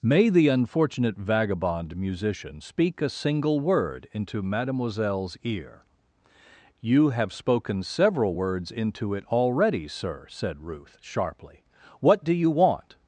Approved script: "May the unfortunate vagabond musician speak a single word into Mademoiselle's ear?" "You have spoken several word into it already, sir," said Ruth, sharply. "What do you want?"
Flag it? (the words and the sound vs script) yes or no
yes